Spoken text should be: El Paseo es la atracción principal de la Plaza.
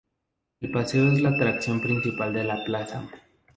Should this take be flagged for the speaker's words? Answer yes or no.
no